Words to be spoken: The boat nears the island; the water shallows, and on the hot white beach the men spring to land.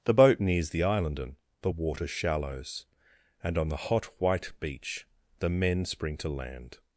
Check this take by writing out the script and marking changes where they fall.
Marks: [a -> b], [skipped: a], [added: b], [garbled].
The boat nears the island; [added: and] the water shallows, and on the hot white beach the men spring to land.